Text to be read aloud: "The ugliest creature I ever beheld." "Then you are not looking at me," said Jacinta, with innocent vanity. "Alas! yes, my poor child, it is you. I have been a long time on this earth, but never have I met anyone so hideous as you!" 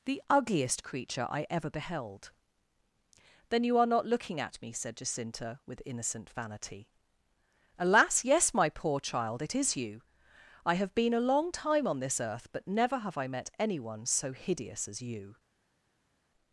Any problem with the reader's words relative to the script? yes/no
no